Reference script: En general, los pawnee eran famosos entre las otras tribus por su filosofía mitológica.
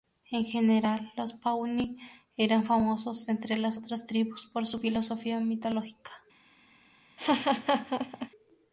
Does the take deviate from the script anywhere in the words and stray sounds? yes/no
yes